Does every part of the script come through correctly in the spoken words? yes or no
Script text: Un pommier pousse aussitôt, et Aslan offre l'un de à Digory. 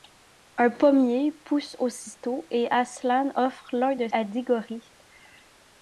yes